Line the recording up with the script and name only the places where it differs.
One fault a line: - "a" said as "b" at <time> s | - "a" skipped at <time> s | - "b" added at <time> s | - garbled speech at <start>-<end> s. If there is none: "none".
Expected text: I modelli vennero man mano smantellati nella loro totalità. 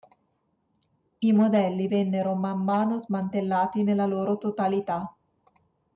none